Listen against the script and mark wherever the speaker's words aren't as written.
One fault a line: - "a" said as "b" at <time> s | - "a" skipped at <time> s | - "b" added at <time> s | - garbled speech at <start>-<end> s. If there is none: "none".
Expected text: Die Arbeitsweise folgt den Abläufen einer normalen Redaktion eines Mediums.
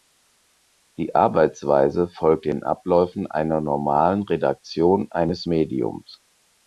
none